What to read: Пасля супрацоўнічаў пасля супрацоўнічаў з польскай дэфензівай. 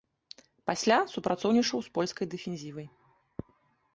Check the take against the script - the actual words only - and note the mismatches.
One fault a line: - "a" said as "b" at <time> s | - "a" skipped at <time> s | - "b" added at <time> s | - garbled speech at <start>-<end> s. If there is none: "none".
- "пасля супрацоўнічаў" skipped at 1.8 s